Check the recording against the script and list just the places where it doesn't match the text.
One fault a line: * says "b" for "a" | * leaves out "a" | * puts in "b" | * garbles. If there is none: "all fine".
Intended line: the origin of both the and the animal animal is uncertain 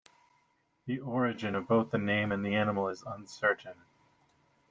* puts in "name"
* leaves out "animal"